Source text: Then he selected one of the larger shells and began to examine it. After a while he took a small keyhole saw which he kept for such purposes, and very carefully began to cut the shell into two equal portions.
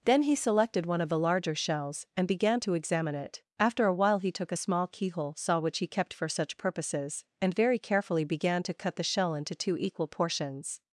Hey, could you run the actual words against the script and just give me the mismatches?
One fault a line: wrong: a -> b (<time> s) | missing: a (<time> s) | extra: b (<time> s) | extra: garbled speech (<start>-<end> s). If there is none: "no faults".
no faults